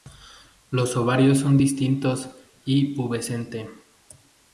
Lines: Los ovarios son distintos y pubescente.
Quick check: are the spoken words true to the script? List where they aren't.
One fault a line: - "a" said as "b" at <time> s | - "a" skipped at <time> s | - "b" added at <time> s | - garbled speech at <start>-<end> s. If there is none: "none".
none